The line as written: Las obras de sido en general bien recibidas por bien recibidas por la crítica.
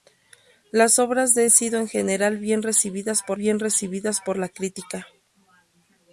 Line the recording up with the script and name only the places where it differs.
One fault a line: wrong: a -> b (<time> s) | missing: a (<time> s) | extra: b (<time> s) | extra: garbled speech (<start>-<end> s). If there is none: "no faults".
no faults